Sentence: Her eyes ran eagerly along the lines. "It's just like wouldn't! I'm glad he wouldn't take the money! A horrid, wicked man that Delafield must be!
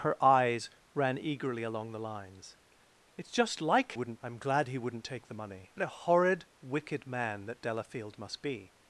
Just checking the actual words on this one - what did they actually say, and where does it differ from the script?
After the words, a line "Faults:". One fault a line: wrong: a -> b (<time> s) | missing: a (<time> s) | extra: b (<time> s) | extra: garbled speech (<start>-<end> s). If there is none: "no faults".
Her eyes ran eagerly along the lines. "It's just like wouldn't! I'm glad he wouldn't take the money! A horrid, wicked man that Delafield must be!
Faults:
no faults